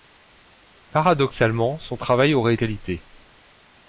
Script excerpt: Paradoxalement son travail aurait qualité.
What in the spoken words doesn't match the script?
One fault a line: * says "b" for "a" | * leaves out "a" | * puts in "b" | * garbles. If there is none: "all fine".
all fine